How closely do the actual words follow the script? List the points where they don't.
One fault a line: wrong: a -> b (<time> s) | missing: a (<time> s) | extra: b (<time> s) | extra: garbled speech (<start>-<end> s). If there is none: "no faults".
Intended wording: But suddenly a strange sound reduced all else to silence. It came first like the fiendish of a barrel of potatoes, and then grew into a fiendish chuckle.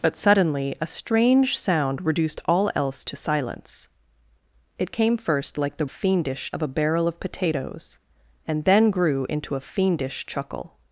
no faults